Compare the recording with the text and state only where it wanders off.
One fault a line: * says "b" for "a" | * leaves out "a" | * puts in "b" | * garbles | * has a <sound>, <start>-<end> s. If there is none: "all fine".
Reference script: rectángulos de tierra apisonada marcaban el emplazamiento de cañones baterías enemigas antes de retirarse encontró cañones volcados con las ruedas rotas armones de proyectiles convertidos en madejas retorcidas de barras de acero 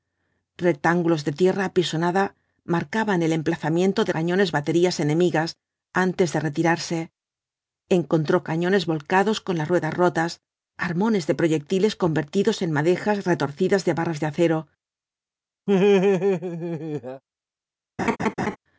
* has a laugh, 15.7-17.2 s
* has a laugh, 18.0-18.6 s